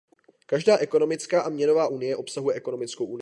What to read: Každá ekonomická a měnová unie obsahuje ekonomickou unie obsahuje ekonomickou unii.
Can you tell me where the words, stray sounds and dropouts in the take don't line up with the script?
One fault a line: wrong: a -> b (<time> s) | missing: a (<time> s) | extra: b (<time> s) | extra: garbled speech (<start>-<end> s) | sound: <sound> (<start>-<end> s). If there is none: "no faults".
missing: unie obsahuje ekonomickou (3.1 s)